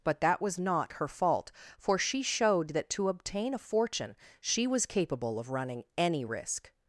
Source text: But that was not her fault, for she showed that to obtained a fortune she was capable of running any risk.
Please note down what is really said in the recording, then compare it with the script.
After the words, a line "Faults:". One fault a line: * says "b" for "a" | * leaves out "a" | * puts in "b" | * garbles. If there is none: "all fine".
But that was not her fault, for she showed that to obtain a fortune she was capable of running any risk.
Faults:
* says "obtain" for "obtained"